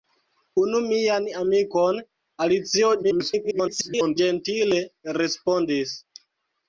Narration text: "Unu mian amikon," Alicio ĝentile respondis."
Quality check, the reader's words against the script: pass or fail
fail